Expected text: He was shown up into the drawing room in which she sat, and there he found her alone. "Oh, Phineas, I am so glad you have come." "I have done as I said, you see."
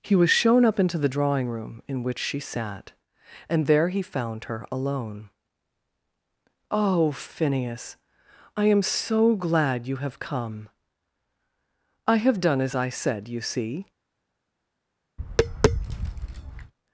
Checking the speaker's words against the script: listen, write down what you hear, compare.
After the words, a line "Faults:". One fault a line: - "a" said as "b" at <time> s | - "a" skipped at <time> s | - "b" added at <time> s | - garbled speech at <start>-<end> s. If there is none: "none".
He was shown up into the drawing room in which she sat, and there he found her alone. "Oh, Phineas, I am so glad you have come." "I have done as I said, you see."
Faults:
none